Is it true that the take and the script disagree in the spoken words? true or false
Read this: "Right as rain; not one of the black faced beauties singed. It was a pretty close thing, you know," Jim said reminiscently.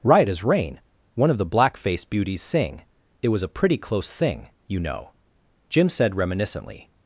true